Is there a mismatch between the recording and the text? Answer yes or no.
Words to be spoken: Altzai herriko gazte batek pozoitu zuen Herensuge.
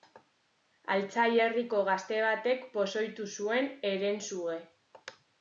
no